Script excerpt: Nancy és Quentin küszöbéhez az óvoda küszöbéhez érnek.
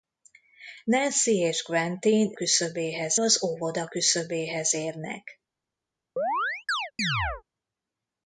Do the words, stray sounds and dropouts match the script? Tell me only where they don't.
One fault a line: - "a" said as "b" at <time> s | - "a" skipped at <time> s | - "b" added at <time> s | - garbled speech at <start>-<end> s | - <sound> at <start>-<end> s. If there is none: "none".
- chirp at 6.2-7.4 s